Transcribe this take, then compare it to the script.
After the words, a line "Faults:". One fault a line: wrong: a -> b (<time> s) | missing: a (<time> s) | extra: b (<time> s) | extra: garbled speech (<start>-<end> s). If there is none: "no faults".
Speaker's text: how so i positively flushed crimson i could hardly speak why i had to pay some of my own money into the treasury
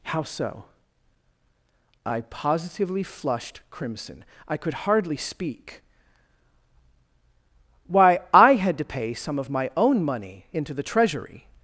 how so i positively flushed crimson i could hardly speak why i had to pay some of my own money into the treasury
Faults:
no faults